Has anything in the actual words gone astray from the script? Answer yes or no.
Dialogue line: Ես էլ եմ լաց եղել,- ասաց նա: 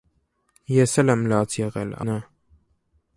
yes